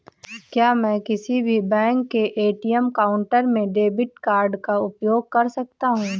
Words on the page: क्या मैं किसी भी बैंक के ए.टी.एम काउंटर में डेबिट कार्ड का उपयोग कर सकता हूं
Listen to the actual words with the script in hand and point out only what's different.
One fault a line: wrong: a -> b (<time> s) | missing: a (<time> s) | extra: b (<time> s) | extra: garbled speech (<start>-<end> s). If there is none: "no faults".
no faults